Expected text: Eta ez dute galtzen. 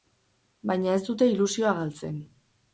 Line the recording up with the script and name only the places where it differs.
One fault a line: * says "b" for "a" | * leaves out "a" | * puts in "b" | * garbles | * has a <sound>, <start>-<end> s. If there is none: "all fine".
* says "Baina" for "Eta"
* puts in "ilusioa"